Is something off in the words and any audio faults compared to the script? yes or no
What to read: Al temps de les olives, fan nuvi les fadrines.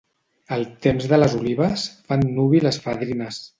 no